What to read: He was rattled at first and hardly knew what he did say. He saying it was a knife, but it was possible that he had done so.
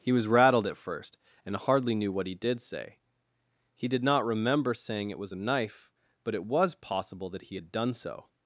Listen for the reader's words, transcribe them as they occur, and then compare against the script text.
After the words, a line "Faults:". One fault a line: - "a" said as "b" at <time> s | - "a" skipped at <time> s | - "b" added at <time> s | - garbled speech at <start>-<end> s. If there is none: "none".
He was rattled at first and hardly knew what he did say. He did not remember saying it was a knife, but it was possible that he had done so.
Faults:
- "did not remember" added at 3.9 s